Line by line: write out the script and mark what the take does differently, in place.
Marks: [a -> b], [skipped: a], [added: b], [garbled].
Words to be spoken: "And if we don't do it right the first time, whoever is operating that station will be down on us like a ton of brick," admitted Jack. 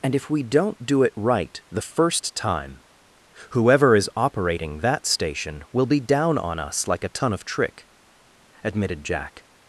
"And if we don't do it right the first time, whoever is operating that station will be down on us like a ton of [brick," -> trick] admitted Jack.